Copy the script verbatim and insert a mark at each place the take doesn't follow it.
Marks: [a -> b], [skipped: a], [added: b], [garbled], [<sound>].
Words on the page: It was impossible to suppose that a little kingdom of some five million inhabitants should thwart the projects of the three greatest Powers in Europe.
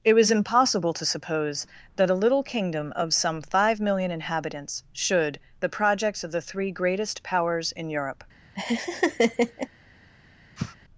It was impossible to suppose that a little kingdom of some five million inhabitants should [skipped: thwart] the projects of the three greatest Powers in Europe. [laugh] [sniff]